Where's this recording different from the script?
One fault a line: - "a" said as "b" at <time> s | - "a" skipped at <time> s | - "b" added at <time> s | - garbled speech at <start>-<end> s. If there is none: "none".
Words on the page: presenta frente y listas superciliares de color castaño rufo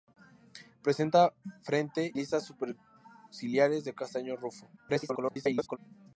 - "y" skipped at 2.1 s
- "color" skipped at 3.9 s
- garbled speech at 4.8-5.8 s